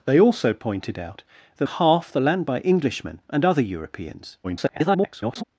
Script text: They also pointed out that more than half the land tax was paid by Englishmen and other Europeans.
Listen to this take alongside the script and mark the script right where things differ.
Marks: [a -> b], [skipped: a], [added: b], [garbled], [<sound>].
They also pointed out that [skipped: more than] half the land [skipped: tax was paid] by Englishmen and other Europeans. [garbled]